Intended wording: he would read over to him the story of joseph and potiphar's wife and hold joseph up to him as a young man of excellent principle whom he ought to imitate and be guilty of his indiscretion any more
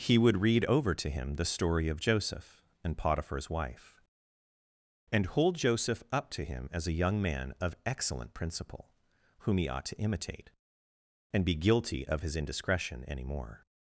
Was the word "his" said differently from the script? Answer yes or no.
no